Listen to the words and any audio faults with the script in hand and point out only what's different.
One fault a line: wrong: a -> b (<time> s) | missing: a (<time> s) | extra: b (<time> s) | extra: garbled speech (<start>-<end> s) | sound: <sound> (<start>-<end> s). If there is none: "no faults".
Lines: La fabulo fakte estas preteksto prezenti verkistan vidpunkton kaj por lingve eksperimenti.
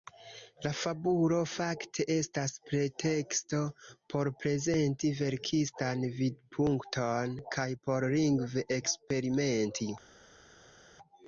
extra: por (4.1 s)